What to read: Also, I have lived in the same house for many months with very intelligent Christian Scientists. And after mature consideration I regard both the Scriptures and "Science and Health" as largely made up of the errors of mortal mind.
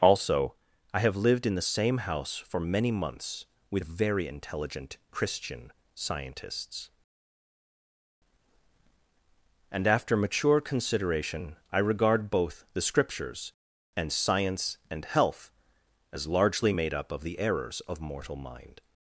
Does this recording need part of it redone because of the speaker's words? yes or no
no